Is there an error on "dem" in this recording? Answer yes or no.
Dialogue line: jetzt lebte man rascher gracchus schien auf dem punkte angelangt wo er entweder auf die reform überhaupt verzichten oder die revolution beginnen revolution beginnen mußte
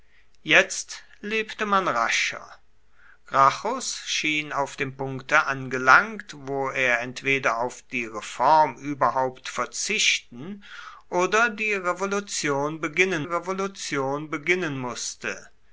no